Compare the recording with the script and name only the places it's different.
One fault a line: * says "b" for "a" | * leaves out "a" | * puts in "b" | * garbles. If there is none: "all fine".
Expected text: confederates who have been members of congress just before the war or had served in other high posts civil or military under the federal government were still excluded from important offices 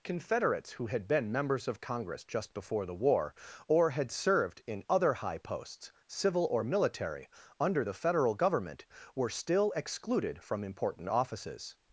* says "had" for "have"